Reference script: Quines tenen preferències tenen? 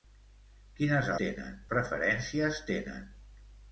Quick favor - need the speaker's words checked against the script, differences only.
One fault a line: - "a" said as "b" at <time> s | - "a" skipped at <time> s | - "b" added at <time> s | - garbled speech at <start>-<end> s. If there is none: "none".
none